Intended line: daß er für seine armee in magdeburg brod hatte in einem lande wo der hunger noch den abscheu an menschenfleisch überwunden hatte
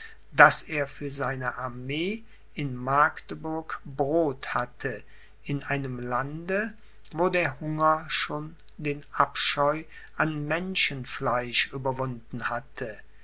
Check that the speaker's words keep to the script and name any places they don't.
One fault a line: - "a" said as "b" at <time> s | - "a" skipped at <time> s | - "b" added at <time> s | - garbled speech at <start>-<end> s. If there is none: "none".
- "noch" said as "schon" at 8.1 s